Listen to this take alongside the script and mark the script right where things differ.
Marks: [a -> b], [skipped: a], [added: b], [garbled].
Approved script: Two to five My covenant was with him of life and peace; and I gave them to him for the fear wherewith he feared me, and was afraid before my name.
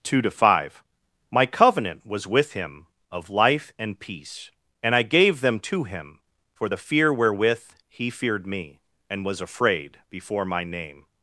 Two to five My covenant was with him of life and peace; and I gave them to him for the fear wherewith he feared me, and was afraid before my name.